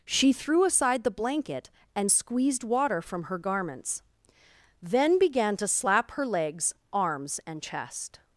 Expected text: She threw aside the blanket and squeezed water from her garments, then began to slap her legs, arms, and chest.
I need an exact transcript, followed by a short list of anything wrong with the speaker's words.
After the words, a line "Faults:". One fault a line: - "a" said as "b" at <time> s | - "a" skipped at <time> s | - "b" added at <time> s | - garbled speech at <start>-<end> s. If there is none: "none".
She threw aside the blanket and squeezed water from her garments, then began to slap her legs, arms, and chest.
Faults:
none